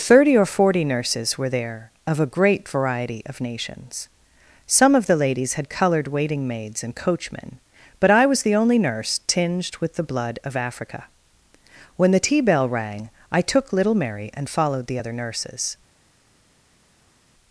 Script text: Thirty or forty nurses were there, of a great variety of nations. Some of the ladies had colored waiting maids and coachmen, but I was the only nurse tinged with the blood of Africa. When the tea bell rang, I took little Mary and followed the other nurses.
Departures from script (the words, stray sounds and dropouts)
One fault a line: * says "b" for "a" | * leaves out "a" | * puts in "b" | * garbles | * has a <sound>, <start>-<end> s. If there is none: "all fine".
all fine